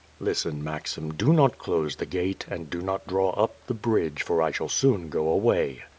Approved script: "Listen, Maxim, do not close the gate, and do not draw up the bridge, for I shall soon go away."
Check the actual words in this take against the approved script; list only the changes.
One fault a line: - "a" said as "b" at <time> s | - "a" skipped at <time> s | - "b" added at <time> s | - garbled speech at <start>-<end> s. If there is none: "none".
none